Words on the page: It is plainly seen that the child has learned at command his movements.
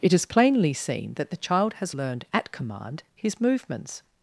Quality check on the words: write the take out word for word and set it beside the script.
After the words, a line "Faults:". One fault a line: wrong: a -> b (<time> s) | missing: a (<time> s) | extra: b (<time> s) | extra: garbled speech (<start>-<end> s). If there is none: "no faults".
It is plainly seen that the child has learned at command his movements.
Faults:
no faults